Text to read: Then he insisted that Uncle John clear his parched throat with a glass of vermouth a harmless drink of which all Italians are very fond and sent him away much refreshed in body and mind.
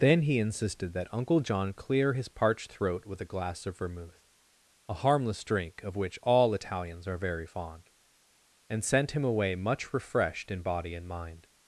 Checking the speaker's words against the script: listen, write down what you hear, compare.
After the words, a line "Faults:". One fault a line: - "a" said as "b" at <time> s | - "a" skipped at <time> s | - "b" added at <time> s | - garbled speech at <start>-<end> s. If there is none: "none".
Then he insisted that Uncle John clear his parched throat with a glass of vermouth a harmless drink of which all Italians are very fond and sent him away much refreshed in body and mind.
Faults:
none